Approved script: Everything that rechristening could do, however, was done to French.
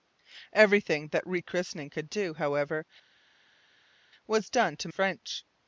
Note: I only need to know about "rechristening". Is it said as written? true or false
true